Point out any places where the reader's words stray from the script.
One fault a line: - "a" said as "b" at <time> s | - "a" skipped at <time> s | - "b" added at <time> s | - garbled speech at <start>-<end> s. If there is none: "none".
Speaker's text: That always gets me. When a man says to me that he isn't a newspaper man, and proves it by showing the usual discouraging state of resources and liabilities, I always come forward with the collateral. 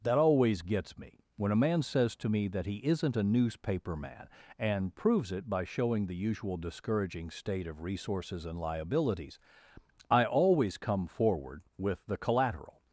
none